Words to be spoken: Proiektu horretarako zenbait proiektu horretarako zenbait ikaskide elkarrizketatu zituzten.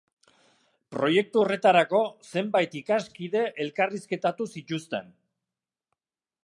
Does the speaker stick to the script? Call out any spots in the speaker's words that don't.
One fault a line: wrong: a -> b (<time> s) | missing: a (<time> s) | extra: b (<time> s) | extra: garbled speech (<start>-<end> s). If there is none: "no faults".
missing: proiektu horretarako zenbait (2.8 s)